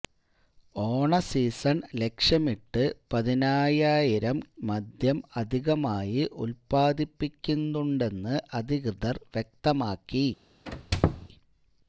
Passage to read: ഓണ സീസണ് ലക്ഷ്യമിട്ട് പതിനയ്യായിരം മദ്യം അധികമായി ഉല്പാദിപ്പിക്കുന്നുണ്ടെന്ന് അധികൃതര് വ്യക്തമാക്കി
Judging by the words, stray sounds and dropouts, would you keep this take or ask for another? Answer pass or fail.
fail